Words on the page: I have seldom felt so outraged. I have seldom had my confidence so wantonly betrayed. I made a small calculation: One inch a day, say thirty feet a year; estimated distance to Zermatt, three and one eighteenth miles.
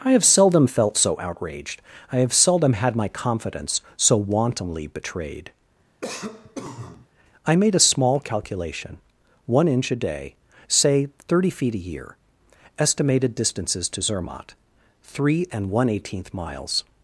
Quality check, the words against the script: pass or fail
fail